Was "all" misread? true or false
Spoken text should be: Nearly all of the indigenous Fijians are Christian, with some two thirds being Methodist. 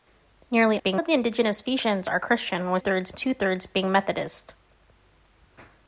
true